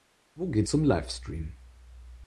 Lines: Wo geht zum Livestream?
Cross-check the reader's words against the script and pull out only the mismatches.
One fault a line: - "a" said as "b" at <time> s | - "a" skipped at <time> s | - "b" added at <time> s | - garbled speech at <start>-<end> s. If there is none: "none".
none